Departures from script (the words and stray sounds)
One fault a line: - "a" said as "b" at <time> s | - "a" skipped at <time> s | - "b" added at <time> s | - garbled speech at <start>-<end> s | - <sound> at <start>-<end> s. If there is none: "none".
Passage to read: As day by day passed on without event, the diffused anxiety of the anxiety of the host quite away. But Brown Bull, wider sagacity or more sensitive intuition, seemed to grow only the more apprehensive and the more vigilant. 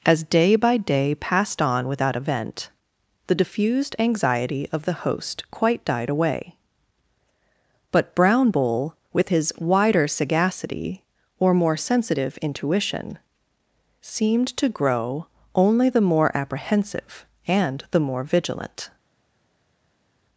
- "anxiety of the" skipped at 5.0 s
- "died" added at 5.8 s
- "with his" added at 9.1 s